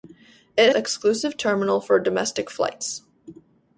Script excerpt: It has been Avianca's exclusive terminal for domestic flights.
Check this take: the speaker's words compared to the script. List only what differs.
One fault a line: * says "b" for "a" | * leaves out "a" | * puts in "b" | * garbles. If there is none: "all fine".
* leaves out "has been Avianca's"